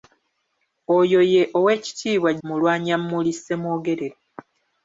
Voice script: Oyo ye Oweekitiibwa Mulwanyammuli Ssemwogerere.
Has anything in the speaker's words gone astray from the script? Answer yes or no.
no